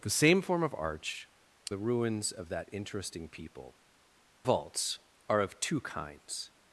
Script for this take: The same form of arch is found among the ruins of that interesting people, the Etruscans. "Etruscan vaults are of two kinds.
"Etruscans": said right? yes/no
no